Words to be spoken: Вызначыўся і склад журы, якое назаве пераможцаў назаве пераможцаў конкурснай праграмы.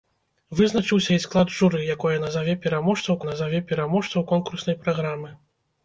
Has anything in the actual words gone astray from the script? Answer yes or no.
no